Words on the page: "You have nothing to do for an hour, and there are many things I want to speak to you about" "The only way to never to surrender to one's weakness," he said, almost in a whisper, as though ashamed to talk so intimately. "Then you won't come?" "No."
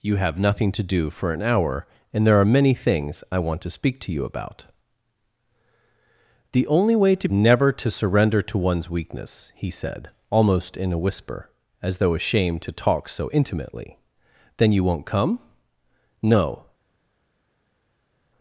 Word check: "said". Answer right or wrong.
right